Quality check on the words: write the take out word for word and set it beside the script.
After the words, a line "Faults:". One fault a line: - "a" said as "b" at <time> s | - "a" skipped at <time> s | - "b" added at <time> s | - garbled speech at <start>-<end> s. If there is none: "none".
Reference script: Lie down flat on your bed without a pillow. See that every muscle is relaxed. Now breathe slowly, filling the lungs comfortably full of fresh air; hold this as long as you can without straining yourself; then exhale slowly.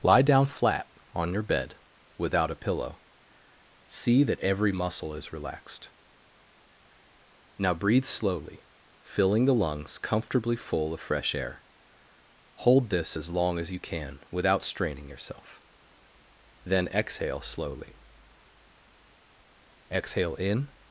Lie down flat on your bed without a pillow. See that every muscle is relaxed. Now breathe slowly, filling the lungs comfortably full of fresh air; hold this as long as you can without straining yourself; then exhale slowly. Exhale in
Faults:
- "Exhale in" added at 19.9 s